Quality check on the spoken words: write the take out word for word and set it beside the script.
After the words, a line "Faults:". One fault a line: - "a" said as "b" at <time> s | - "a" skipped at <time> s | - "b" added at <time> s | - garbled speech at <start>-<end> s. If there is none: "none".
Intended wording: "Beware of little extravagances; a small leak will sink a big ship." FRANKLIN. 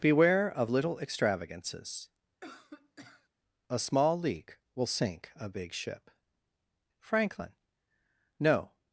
"Beware of little extravagances; a small leak will sink a big ship." FRANKLIN. "No
Faults:
- "No" added at 8.4 s